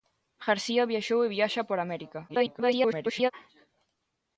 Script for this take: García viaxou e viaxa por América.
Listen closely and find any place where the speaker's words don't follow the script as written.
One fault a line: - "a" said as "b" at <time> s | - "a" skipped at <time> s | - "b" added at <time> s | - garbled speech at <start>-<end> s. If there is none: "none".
- garbled speech at 2.3-3.3 s